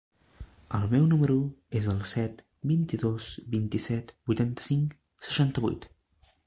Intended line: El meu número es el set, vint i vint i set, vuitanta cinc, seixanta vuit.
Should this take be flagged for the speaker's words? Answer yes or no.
yes